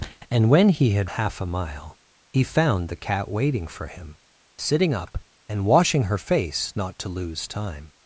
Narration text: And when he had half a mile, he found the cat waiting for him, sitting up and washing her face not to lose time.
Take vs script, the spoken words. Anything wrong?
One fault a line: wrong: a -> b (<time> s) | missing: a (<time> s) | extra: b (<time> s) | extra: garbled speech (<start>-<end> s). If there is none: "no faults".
no faults